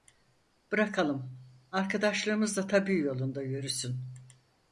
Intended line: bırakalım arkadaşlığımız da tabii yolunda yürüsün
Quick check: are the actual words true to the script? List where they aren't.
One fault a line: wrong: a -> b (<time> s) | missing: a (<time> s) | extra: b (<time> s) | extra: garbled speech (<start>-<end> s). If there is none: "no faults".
no faults